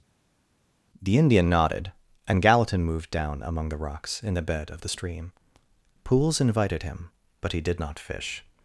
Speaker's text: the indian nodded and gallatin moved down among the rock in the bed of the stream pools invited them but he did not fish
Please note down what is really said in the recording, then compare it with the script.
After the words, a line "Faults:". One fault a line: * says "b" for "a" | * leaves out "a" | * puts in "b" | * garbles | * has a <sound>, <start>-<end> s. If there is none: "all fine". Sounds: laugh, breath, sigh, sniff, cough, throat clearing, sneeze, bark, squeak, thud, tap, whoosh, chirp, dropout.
the indian nodded and gallatin moved down among the rocks in the bed of the stream pools invited him but he did not fish
Faults:
* says "rocks" for "rock"
* says "him" for "them"